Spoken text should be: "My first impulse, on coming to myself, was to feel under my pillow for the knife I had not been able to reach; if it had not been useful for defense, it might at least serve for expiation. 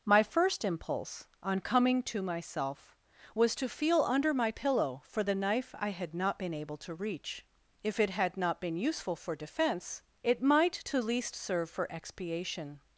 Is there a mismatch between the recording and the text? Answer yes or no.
yes